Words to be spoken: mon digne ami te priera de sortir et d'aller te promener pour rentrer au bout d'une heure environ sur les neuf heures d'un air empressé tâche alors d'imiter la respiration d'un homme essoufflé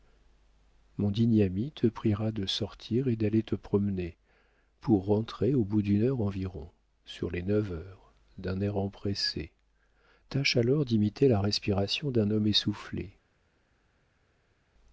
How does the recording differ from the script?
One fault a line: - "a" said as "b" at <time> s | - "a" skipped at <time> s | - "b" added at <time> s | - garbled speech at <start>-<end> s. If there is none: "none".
none